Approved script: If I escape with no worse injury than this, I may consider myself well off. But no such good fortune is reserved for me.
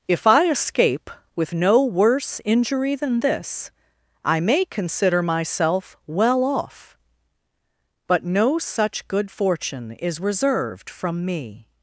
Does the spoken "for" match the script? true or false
false